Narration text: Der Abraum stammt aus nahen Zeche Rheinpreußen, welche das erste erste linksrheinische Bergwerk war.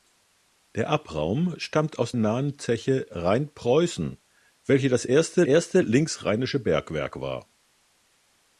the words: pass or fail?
pass